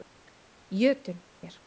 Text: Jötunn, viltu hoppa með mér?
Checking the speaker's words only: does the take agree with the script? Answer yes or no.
no